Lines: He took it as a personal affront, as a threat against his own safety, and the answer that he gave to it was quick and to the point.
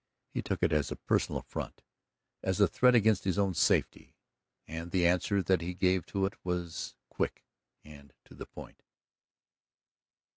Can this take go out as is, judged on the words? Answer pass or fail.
pass